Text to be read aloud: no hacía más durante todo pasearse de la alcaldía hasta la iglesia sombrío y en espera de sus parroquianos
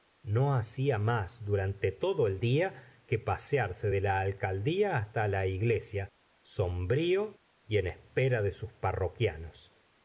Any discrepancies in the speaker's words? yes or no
yes